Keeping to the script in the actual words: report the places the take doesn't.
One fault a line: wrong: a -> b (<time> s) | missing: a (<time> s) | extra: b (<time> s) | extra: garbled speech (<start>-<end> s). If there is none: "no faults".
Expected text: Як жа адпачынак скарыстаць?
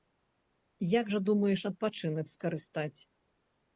extra: думаеш (1.3 s)